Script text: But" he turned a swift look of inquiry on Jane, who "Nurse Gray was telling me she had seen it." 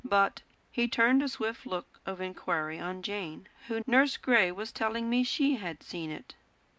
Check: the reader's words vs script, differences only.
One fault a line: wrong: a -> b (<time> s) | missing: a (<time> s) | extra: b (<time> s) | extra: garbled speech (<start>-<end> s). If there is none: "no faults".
no faults